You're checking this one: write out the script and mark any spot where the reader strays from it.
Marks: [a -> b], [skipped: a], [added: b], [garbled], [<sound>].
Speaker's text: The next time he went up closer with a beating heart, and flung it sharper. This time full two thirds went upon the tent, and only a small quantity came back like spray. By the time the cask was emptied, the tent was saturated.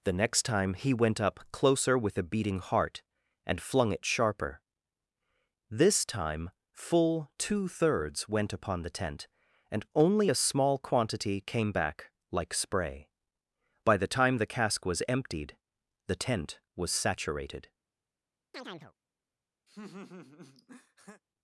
The next time he went up closer with a beating heart, and flung it sharper. This time full two thirds went upon the tent, and only a small quantity came back like spray. By the time the cask was emptied, the tent was saturated. [chirp] [laugh]